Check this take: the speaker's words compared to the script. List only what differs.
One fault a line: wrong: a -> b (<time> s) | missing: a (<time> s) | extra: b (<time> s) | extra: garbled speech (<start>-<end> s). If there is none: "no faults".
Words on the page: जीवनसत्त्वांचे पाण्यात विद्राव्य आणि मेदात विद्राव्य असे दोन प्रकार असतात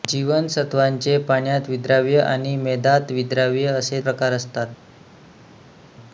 missing: दोन (4.0 s)